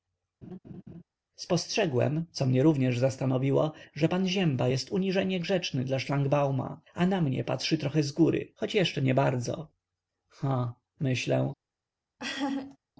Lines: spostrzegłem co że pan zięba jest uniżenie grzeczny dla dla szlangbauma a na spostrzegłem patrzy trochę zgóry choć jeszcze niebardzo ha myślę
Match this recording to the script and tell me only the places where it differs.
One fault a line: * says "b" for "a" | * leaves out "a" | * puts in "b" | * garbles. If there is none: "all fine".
* puts in "mnie również zastanowiło"
* leaves out "dla"
* says "mnie" for "spostrzegłem"